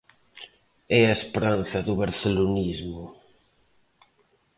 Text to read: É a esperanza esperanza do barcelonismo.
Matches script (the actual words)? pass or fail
fail